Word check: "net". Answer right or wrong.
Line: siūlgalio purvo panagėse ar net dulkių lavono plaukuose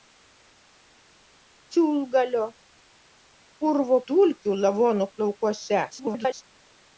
wrong